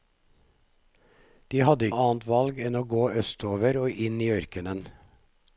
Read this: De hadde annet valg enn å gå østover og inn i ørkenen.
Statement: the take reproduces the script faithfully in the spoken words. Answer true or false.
true